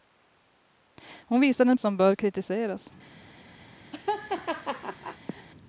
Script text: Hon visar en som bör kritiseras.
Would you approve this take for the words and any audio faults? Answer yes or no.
no